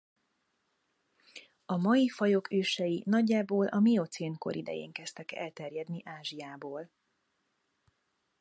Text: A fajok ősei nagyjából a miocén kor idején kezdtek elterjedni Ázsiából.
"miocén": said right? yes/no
yes